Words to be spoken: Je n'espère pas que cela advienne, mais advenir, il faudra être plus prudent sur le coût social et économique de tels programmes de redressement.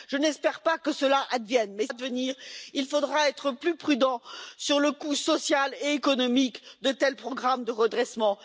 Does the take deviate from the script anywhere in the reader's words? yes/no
no